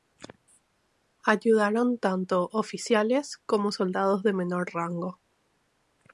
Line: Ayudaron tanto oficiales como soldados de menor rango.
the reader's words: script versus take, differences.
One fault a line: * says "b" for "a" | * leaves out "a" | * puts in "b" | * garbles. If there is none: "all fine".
all fine